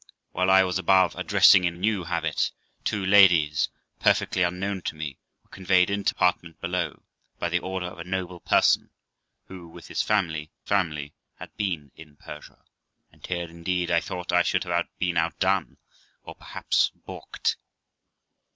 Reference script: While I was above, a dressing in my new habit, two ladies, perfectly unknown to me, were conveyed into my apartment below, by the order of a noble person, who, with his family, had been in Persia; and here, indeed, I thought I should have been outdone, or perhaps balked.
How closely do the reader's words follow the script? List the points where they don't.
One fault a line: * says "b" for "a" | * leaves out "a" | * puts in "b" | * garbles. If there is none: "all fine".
* leaves out "my"
* leaves out "my"
* puts in "family"